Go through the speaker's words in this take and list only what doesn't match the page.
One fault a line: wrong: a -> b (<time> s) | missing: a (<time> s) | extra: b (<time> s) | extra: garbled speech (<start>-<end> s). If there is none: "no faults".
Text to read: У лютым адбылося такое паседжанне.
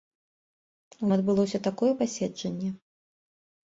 missing: лютым (1.1 s)